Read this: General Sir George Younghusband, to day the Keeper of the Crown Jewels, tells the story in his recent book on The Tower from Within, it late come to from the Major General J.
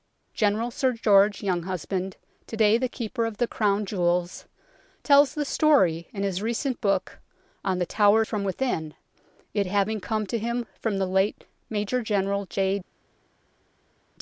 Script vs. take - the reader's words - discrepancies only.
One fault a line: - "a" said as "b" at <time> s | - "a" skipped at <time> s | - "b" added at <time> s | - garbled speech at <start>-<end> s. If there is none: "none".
- "late" said as "having" at 9.7 s
- "him" added at 10.4 s
- "late" added at 11.1 s